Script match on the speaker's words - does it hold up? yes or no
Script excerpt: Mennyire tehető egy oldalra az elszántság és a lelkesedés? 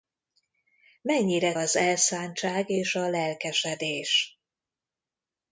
no